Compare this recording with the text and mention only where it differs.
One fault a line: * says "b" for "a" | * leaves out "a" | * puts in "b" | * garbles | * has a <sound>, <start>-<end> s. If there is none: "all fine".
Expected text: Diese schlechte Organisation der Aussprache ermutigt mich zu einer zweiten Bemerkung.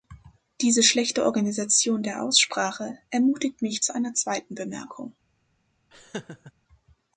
* has a laugh, 5.9-6.5 s